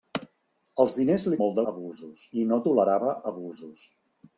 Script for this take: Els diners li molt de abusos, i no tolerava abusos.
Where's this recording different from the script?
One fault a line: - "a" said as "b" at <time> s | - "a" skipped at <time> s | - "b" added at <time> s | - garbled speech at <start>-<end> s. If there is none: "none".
none